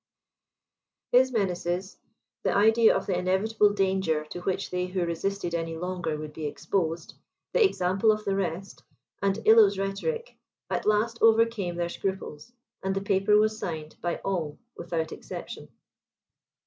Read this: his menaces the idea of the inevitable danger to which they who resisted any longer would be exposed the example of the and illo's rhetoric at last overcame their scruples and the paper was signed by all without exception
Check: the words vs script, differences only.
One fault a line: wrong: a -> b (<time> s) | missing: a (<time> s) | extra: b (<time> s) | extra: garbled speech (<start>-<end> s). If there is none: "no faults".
extra: rest (8.3 s)